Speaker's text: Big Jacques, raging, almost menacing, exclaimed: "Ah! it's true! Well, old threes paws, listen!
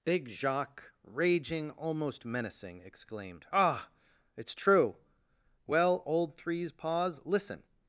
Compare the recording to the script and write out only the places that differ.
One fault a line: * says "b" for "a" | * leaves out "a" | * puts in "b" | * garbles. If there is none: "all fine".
all fine